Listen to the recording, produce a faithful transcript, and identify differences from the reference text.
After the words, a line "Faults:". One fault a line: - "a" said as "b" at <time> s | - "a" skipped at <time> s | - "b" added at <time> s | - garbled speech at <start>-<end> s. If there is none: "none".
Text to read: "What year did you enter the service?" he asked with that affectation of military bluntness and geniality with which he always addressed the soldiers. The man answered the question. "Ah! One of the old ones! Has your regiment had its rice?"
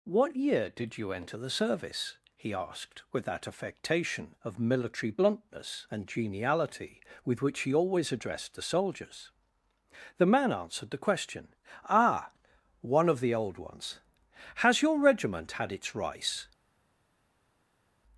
"What year did you enter the service?" he asked with that affectation of military bluntness and geniality with which he always addressed the soldiers. The man answered the question. "Ah! One of the old ones! Has your regiment had its rice?"
Faults:
none